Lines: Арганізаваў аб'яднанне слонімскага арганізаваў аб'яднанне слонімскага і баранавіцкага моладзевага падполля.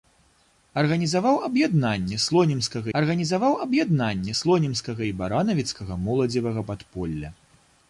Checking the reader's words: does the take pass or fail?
pass